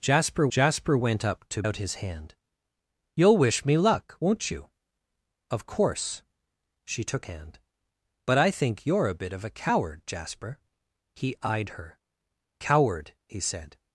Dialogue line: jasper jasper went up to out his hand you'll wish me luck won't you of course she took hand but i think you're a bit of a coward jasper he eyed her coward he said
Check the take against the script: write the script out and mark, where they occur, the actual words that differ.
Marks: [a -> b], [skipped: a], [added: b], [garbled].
jasper jasper went up to out his hand you'll wish me luck won't you of course she took hand but i think you're a bit of a coward jasper he eyed her coward he said